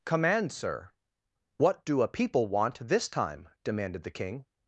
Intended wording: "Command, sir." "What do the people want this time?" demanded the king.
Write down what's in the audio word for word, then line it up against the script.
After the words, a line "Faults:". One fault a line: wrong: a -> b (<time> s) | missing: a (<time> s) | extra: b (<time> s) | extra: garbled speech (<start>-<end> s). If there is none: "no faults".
"Command, sir." "What do a people want this time?" demanded the king.
Faults:
wrong: the -> a (2.0 s)